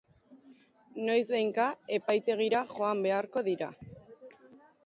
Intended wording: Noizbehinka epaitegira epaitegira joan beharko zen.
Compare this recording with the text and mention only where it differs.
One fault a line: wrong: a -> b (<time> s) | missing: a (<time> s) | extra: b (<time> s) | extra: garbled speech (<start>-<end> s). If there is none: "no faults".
missing: epaitegira (2.6 s)
wrong: zen -> dira (3.5 s)